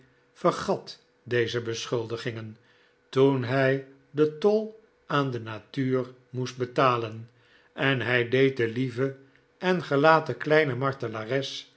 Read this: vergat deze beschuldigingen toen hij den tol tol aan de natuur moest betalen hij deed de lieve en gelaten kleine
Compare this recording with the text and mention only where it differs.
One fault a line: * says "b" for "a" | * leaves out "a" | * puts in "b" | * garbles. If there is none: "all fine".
* leaves out "tol"
* puts in "en"